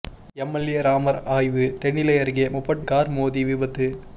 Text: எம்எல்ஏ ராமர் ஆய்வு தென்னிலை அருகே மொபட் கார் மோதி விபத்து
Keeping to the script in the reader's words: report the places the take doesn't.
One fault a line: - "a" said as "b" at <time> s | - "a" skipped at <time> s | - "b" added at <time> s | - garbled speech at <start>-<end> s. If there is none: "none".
none